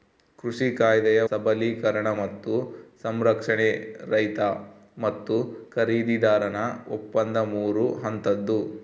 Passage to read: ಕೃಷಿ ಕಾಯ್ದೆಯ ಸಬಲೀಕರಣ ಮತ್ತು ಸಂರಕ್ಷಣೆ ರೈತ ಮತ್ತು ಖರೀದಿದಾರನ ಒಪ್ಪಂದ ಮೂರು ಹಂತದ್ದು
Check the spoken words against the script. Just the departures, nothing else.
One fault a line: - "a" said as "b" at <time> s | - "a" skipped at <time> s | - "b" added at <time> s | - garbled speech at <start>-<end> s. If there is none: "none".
none